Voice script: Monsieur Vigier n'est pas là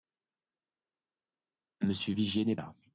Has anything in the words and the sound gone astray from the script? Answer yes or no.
yes